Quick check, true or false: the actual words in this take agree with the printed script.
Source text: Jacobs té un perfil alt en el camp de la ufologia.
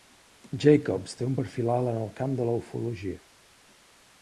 true